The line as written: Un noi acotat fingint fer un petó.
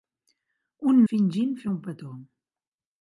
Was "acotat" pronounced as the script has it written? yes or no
no